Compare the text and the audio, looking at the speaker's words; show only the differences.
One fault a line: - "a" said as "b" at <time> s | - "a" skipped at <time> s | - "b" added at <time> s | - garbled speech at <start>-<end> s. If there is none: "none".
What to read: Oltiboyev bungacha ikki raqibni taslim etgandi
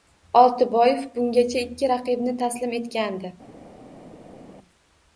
none